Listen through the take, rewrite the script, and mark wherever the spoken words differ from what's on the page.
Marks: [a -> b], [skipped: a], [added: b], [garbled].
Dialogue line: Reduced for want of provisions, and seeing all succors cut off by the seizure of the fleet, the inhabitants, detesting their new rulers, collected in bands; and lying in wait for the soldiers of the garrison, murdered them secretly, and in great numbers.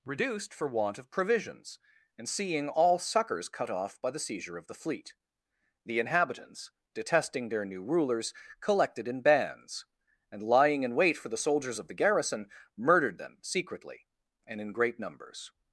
Reduced for want of provisions, and seeing all succors cut off by the seizure of the fleet, the inhabitants, detesting their new rulers, collected in bands; and lying in wait for the soldiers of the garrison, murdered them secretly, and in great numbers.